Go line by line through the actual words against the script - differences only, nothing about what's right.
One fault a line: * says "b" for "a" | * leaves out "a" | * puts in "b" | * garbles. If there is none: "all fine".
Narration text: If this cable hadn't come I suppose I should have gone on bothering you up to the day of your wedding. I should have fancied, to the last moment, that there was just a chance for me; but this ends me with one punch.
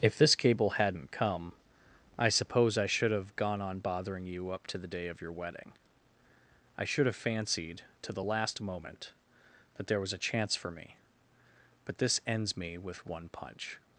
* leaves out "just"